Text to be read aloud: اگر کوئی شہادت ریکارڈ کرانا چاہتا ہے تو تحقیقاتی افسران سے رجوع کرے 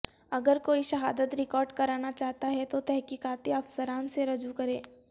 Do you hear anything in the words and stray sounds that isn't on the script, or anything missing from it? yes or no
no